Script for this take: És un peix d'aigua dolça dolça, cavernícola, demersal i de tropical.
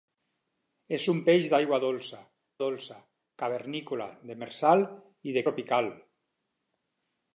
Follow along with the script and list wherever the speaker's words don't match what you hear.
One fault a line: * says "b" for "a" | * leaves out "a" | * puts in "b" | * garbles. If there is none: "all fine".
all fine